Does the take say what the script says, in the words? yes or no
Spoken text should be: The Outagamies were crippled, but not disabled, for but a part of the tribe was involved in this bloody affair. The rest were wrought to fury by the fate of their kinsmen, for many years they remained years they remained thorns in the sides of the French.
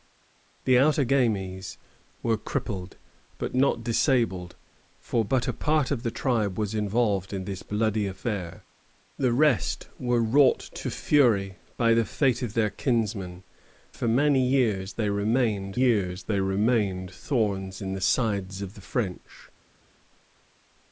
yes